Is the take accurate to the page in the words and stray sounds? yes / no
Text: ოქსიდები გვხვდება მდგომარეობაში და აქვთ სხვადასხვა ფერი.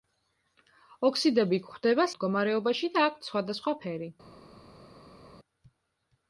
yes